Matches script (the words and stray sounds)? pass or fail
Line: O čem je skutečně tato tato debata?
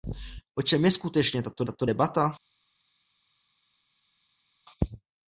pass